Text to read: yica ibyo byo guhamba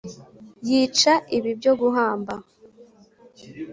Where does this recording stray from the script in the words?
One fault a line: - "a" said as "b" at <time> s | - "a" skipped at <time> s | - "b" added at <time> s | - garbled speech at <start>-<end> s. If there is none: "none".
- "ibyo" said as "ibi" at 1.4 s